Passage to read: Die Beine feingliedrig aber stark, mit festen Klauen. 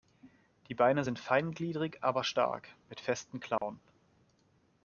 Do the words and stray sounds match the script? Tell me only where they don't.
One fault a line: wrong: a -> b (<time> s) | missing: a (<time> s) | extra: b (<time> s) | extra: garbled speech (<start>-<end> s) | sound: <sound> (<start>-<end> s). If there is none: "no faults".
extra: sind (1.0 s)
sound: dropout (3.6-3.6 s)